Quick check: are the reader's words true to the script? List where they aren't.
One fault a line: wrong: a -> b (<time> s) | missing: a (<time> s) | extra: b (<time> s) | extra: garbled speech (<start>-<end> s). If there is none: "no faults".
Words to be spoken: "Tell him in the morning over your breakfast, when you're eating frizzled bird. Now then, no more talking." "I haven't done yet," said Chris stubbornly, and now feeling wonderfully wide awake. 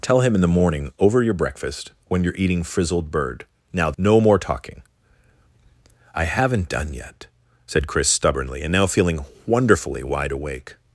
missing: then (3.9 s)